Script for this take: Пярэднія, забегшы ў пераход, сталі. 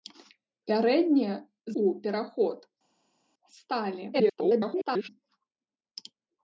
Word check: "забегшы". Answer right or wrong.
wrong